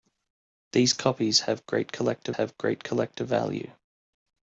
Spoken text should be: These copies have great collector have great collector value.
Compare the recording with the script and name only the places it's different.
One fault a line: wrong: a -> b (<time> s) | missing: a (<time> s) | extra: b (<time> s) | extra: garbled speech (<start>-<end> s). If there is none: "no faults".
no faults